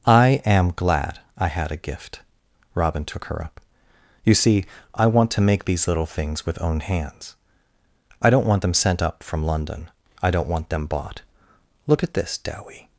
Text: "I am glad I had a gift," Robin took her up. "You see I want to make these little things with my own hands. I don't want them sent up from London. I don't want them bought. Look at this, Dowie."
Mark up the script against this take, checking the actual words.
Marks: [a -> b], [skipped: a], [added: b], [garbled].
"I am glad I had a gift," Robin took her up. "You see I want to make these little things with [skipped: my] own hands. I don't want them sent up from London. I don't want them bought. Look at this, Dowie."